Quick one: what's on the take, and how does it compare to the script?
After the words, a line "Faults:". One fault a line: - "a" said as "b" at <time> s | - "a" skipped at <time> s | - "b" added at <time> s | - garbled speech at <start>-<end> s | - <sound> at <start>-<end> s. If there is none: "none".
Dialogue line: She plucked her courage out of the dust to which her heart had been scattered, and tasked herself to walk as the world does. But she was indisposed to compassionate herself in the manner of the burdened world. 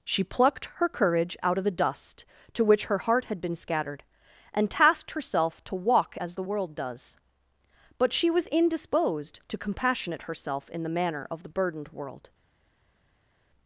She plucked her courage out of the dust to which her heart had been scattered, and tasked herself to walk as the world does. But she was indisposed to compassionate herself in the manner of the burdened world.
Faults:
none